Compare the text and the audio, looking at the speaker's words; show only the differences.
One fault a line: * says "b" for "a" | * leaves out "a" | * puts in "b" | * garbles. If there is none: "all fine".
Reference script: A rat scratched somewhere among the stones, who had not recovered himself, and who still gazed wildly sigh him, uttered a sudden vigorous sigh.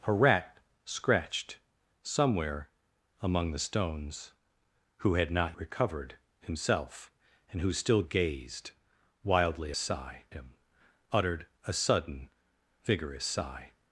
all fine